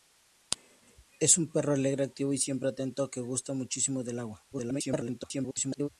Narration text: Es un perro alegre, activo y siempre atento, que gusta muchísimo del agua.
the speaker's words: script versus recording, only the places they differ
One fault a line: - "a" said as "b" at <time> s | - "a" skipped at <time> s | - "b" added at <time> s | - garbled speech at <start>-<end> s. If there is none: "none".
- garbled speech at 4.5-5.9 s